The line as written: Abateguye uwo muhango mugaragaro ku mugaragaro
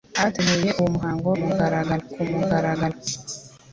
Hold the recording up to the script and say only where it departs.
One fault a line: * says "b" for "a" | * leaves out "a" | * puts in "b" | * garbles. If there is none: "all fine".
all fine